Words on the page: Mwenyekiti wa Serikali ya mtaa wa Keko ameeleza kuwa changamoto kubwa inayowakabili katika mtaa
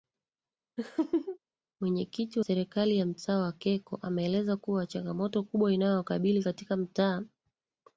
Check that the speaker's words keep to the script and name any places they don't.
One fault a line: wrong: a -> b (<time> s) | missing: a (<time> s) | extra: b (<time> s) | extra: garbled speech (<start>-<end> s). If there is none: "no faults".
missing: wa (2.4 s)